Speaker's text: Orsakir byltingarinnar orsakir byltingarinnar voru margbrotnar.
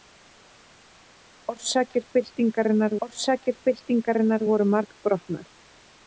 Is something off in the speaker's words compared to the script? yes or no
no